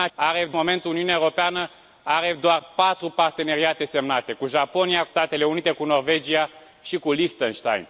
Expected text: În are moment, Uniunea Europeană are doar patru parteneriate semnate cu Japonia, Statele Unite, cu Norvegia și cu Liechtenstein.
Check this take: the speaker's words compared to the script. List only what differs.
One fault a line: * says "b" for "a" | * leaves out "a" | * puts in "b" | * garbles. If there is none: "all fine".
all fine